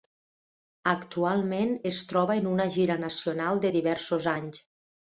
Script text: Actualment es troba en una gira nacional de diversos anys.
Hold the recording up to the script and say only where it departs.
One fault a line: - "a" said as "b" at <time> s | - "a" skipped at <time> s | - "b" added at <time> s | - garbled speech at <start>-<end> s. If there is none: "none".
none